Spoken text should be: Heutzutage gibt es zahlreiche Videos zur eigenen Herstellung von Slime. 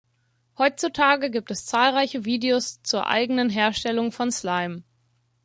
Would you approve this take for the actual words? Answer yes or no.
yes